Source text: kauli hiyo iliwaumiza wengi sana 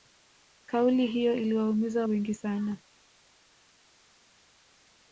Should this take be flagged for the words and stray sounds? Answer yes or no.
no